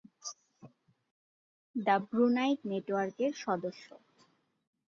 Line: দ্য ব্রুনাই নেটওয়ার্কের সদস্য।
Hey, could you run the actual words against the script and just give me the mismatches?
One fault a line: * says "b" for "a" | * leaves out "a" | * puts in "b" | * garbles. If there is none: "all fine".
all fine